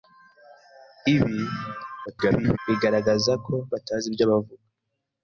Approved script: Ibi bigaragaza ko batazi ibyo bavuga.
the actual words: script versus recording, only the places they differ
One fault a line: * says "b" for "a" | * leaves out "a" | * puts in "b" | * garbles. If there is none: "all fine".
* garbles